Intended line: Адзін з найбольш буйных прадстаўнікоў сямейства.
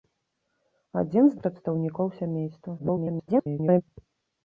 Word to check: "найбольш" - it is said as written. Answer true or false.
false